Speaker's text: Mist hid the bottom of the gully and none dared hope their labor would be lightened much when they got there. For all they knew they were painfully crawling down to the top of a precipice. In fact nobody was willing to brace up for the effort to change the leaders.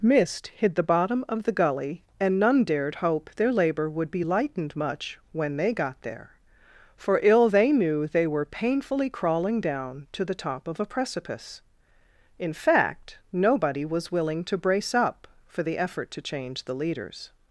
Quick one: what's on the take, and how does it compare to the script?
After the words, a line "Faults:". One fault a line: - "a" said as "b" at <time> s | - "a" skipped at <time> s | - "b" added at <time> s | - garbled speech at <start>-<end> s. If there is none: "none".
Mist hid the bottom of the gully and none dared hope their labor would be lightened much when they got there. For ill they knew they were painfully crawling down to the top of a precipice. In fact nobody was willing to brace up for the effort to change the leaders.
Faults:
- "all" said as "ill" at 7.2 s